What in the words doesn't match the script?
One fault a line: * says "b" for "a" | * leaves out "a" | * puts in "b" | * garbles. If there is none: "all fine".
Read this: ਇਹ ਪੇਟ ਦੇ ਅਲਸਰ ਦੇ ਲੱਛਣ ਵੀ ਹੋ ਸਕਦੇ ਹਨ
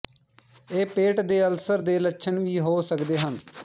all fine